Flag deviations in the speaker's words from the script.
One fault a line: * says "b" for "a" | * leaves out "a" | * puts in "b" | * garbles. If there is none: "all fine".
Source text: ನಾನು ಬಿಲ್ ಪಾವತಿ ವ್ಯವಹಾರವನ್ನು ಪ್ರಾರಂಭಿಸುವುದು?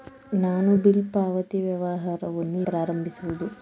all fine